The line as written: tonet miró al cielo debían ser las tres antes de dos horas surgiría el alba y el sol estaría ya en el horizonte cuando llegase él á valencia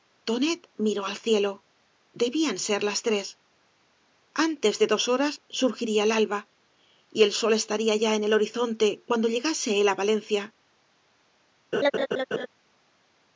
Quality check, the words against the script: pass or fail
pass